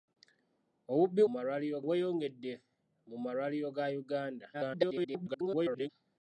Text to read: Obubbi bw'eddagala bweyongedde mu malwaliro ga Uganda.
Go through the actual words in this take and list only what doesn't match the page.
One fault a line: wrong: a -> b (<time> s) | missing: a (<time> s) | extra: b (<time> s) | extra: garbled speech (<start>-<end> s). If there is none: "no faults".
wrong: bw'eddagala -> malwaliro (1.3 s)
extra: garbled speech (4.5-5.9 s)